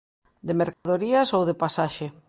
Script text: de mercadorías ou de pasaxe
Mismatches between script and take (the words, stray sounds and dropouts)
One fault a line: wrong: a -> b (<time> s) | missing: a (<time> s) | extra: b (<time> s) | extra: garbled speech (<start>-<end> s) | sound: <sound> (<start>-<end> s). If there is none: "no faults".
sound: dropout (0.7-0.9 s)